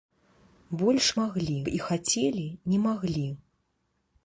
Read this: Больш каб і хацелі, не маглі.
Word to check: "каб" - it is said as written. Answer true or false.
false